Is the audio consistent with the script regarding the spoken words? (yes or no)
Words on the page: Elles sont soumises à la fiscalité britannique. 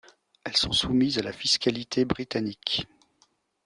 yes